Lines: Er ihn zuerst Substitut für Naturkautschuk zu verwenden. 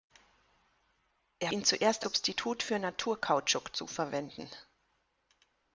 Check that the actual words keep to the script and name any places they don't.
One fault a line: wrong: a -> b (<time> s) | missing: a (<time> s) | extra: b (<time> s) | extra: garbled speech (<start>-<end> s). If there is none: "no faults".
no faults